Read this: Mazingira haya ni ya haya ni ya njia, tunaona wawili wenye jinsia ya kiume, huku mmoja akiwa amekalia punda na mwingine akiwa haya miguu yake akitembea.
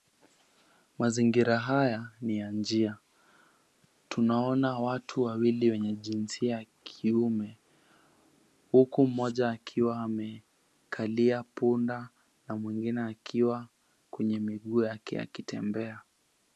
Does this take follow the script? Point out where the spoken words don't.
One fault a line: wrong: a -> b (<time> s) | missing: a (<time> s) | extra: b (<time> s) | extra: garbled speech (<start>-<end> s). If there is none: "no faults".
missing: haya ni ya (2.5 s)
extra: watu (4.8 s)
wrong: haya -> kwenye (14.1 s)